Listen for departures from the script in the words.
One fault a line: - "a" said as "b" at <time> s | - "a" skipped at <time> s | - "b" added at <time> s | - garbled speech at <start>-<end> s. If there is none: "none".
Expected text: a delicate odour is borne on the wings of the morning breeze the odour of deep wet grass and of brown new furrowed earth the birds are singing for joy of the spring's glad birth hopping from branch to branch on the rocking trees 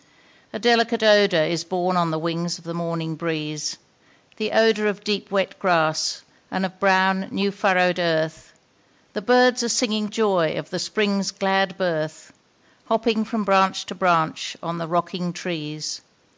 - "for" skipped at 10.1 s